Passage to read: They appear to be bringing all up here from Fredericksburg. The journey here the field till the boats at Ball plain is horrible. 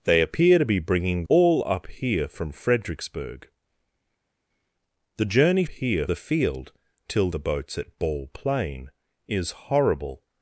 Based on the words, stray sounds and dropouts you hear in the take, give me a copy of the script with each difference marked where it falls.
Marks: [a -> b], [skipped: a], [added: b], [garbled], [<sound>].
They appear to be bringing all up here from Fredericksburg. The journey here the field till the boats at Ball plain is horrible.